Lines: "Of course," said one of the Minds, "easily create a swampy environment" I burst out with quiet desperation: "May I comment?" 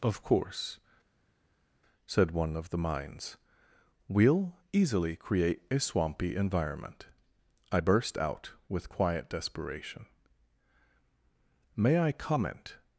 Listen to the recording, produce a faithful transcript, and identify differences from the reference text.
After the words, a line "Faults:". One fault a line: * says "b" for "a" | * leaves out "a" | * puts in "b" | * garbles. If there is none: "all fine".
"Of course," said one of the Minds, "we'll easily create a swampy environment" I burst out with quiet desperation: "May I comment?"
Faults:
* puts in "we'll"